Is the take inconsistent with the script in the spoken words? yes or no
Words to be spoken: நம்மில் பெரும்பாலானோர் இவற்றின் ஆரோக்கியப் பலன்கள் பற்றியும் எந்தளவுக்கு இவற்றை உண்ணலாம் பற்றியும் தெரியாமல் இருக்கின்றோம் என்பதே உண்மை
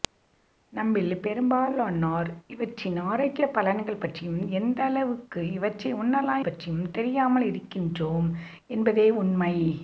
no